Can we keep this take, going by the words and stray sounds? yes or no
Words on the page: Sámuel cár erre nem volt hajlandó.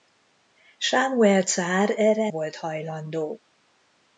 no